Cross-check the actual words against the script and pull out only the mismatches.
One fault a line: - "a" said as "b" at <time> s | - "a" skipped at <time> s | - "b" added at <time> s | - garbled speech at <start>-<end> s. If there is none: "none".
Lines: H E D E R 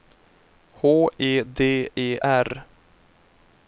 none